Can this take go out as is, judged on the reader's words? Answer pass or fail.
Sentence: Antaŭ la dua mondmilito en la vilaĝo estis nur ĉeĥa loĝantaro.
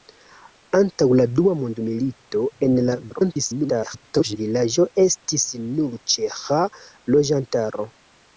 fail